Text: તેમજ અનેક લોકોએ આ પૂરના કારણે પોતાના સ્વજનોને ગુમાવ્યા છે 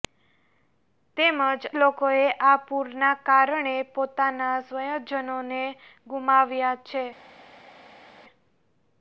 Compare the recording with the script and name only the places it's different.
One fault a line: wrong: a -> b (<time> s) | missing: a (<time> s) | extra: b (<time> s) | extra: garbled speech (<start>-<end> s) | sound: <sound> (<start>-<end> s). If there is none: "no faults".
missing: અનેક (1.4 s)